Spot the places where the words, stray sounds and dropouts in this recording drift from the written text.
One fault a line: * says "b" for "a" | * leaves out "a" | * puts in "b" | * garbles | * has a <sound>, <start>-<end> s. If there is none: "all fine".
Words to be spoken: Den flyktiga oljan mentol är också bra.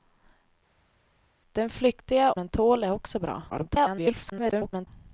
* leaves out "oljan"
* garbles